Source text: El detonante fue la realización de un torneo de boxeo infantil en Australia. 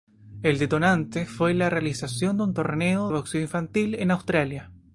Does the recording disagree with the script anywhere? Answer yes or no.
yes